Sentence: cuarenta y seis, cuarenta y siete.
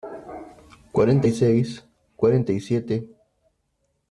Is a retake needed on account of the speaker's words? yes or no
no